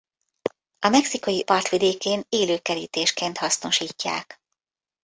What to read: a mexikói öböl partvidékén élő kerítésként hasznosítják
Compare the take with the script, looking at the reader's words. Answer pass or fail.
fail